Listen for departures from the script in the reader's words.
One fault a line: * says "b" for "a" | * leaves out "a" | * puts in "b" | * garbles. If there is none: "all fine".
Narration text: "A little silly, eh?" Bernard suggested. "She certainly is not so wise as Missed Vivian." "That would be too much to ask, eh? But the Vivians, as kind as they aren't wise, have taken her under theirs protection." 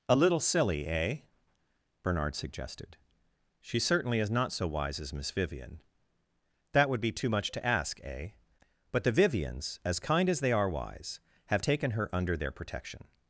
* says "Miss" for "Missed"
* says "are" for "aren't"
* says "their" for "theirs"